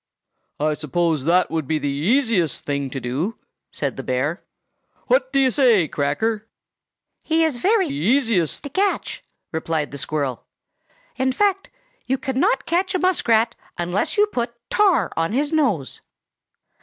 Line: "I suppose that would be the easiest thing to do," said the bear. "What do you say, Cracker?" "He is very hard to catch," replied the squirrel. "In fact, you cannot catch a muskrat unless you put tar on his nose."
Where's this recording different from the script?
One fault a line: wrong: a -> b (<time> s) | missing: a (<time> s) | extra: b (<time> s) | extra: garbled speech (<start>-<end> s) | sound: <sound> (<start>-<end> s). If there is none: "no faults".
wrong: hard -> easiest (7.9 s)